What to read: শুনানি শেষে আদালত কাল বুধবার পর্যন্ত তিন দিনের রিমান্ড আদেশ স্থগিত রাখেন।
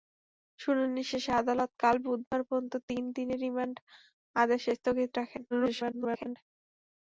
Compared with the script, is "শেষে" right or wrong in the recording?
right